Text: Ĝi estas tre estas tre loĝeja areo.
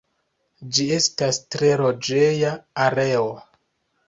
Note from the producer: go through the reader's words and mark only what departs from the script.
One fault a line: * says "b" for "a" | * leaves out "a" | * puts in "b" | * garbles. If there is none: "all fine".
* leaves out "estas tre"